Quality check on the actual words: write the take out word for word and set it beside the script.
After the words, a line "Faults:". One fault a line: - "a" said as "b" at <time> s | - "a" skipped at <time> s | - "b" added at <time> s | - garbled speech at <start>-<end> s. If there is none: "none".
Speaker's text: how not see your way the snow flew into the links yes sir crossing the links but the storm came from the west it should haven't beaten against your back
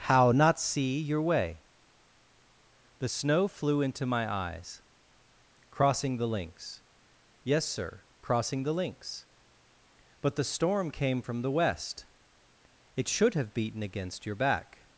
how not see your way the snow flew into my eyes crossing the links yes sir crossing the links but the storm came from the west it should have beaten against your back
Faults:
- "my eyes crossing" added at 4.1 s
- "haven't" said as "have" at 13.3 s